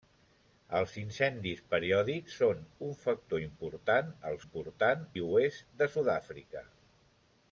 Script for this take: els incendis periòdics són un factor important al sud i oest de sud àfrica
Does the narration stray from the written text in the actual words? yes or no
yes